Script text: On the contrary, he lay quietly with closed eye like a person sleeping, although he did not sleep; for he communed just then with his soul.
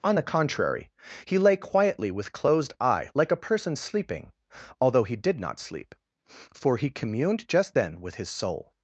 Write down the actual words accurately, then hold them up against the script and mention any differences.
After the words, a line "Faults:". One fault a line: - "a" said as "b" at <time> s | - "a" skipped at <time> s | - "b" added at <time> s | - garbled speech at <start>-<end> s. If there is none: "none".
On the contrary, he lay quietly with closed eye like a person sleeping, although he did not sleep; for he communed just then with his soul.
Faults:
none